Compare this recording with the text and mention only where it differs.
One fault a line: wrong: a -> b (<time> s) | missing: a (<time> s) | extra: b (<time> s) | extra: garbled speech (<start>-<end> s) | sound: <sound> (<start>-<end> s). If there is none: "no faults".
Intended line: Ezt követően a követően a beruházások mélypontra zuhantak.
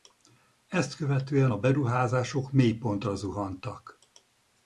missing: követően a (1.6 s)